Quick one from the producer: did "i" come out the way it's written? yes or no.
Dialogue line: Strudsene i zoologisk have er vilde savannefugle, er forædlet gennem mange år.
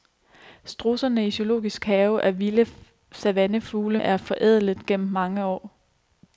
yes